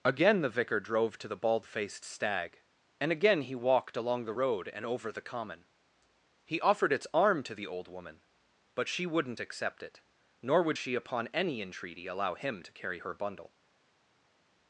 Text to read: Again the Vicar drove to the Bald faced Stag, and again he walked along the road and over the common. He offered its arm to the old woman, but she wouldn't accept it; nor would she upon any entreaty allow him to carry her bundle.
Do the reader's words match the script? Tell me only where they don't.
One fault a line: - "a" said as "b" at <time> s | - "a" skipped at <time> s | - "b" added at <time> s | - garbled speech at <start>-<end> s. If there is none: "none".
none